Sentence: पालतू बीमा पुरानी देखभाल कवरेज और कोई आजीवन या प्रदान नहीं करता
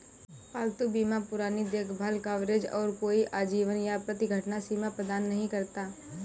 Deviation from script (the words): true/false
true